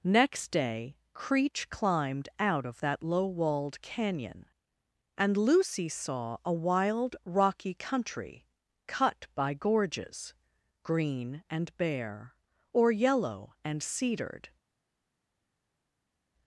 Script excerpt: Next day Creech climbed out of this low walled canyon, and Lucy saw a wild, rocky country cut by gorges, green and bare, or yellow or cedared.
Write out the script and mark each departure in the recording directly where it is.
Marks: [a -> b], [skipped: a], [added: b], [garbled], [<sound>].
Next day Creech climbed out of [this -> that] low walled canyon, and Lucy saw a wild, rocky country cut by gorges, green and bare, or yellow [or -> and] cedared.